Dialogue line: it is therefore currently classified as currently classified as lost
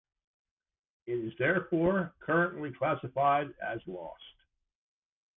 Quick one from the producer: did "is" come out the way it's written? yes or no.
yes